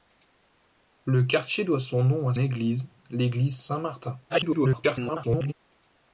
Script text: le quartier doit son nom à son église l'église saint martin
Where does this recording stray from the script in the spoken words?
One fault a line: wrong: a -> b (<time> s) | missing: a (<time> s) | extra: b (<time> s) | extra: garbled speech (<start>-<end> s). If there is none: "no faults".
missing: son (2.3 s)
extra: garbled speech (4.3-5.5 s)